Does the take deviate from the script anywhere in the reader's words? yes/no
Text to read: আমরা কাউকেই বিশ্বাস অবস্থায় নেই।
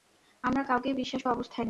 no